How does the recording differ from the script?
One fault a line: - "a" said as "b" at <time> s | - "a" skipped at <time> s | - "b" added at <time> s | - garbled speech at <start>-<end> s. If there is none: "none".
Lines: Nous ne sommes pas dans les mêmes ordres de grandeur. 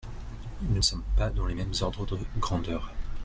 none